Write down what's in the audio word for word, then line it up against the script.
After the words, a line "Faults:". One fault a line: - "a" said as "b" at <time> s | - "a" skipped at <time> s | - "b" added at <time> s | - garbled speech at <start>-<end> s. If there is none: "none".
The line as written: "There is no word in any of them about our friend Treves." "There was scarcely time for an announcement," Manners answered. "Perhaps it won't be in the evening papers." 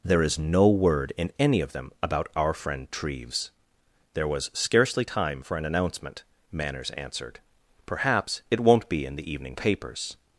"There is no word in any of them about our friend Treves." "There was scarcely time for an announcement," Manners answered. "Perhaps it won't be in the evening papers."
Faults:
none